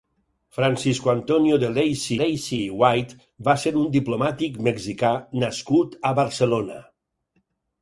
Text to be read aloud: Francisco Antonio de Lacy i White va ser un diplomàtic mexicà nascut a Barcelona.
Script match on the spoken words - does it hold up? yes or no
no